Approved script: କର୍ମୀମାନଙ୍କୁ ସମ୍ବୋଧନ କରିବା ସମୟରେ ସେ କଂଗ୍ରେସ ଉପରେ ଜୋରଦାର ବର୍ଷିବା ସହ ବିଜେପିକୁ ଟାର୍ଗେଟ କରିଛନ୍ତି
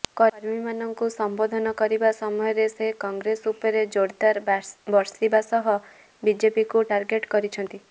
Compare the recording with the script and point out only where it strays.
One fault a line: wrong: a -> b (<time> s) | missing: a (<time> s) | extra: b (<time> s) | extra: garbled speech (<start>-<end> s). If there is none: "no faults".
no faults